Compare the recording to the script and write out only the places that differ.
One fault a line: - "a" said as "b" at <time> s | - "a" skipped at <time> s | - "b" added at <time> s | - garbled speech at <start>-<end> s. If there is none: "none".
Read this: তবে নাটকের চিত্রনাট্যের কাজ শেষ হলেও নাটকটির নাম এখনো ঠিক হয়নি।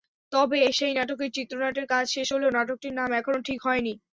- "সেই" added at 0.8 s